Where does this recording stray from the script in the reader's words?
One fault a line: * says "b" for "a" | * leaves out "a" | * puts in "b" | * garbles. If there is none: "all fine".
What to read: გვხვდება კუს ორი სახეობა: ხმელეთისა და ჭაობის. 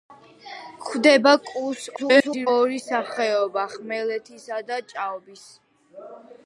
* garbles